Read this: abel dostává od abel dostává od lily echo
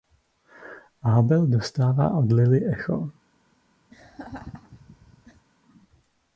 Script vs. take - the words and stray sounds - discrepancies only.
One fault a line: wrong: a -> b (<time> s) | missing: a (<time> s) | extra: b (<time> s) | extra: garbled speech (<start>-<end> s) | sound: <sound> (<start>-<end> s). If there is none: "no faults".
missing: abel dostává od (2.3 s)
sound: laugh (3.9-5.5 s)